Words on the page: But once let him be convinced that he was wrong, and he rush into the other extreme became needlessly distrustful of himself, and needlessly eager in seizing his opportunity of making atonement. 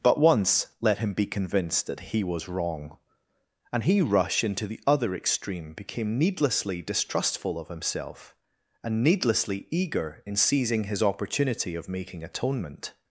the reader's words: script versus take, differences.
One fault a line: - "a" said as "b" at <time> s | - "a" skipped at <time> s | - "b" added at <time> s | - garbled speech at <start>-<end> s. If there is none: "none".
none